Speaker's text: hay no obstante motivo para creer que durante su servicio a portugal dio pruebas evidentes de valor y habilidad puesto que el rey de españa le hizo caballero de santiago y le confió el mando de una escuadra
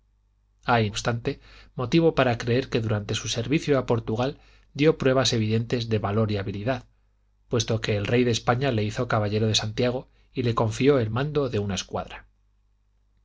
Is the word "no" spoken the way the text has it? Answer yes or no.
no